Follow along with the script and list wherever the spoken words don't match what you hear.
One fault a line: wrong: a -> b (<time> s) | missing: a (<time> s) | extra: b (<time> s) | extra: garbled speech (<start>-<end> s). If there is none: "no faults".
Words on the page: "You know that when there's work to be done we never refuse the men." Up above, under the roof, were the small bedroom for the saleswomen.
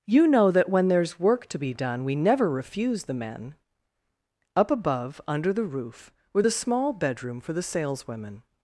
no faults